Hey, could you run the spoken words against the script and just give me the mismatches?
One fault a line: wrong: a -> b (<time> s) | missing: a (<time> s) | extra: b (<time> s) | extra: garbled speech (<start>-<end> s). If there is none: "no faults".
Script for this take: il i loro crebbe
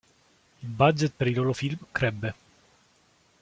extra: budget per (0.7 s)
extra: film (1.5 s)